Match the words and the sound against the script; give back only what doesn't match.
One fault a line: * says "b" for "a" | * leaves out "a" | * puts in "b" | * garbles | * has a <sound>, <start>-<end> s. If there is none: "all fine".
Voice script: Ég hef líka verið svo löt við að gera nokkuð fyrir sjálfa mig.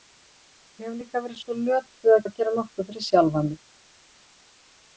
* puts in "að"